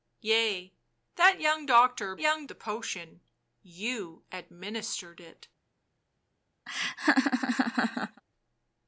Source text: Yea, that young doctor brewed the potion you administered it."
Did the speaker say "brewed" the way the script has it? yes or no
no